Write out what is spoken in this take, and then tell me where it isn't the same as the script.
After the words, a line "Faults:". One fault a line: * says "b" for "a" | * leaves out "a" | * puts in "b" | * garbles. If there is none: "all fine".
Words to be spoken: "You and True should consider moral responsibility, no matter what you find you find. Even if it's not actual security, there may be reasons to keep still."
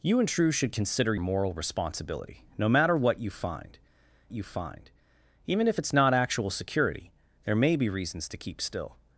"You and True should consider moral responsibility, no matter what you find you find. Even if it's not actual security, there may be reasons to keep still."
Faults:
all fine